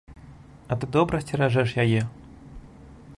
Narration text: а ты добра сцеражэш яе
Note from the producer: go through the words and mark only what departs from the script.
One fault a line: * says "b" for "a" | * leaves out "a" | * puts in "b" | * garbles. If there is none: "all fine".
all fine